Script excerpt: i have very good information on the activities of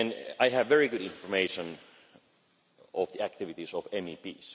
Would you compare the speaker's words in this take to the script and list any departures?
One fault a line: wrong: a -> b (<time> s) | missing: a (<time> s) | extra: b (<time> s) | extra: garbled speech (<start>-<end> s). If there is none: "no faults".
no faults